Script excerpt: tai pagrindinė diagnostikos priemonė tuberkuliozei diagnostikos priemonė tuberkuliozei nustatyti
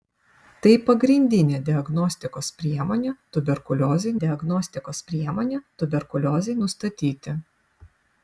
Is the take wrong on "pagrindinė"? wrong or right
right